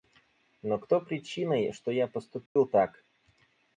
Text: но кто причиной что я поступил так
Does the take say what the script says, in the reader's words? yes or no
yes